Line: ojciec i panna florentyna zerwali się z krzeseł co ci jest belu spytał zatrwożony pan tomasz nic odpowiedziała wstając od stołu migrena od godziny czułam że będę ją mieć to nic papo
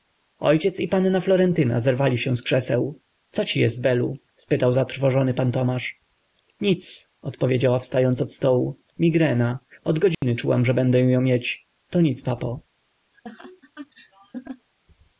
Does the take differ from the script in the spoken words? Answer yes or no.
no